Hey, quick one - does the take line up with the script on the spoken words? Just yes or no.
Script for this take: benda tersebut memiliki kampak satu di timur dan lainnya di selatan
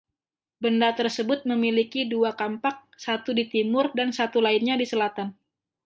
no